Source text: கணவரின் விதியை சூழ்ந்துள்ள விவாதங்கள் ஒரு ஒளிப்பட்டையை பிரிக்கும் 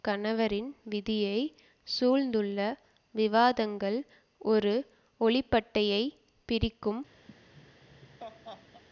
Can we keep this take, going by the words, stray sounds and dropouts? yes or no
no